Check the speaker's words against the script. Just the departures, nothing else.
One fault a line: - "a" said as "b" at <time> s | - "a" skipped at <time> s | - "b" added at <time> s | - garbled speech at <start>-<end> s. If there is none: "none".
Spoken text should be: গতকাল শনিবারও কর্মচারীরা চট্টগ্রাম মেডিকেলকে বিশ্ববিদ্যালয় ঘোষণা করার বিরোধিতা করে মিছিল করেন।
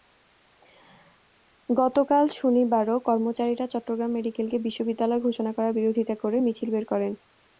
- "বের" added at 6.7 s